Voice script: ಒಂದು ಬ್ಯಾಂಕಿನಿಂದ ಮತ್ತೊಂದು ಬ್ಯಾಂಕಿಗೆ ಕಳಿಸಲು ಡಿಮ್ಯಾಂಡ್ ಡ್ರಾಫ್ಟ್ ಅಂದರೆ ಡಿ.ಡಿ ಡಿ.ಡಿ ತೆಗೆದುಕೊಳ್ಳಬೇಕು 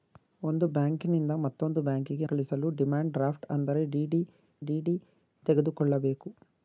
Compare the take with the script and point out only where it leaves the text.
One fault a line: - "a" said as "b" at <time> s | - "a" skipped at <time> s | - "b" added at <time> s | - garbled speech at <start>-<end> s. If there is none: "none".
none